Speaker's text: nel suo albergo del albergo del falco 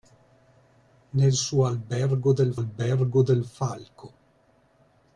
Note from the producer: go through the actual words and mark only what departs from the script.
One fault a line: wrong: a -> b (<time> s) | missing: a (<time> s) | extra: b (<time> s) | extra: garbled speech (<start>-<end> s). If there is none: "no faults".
no faults